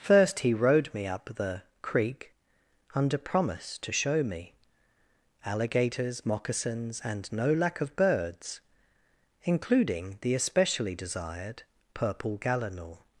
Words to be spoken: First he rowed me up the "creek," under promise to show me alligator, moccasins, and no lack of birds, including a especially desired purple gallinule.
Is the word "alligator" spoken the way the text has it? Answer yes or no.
no